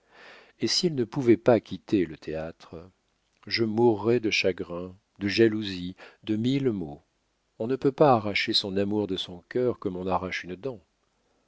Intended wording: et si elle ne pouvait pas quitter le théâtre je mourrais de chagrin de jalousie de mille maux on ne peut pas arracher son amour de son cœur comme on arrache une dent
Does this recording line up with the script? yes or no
yes